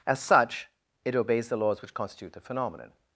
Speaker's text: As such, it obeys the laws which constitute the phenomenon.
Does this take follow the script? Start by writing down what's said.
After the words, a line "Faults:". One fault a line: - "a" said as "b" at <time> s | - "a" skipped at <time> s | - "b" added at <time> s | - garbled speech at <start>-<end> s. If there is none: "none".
As such, it obeys the laws which constitute the phenomenon.
Faults:
none